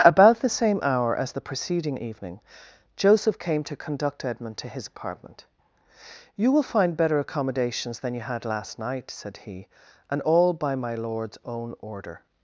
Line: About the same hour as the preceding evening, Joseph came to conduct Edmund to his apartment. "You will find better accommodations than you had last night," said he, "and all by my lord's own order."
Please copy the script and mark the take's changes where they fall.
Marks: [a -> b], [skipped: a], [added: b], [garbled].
About the same hour as the preceding evening, Joseph came to conduct Edmund to his apartment. "You will find better accommodations than you had last night," said he, "and all by my lord's own order."